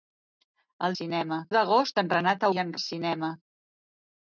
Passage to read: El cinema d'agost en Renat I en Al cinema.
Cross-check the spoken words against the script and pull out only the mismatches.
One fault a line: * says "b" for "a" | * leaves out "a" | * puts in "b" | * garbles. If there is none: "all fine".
all fine